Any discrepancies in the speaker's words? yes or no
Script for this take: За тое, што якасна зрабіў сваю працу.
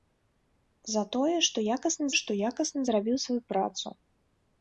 yes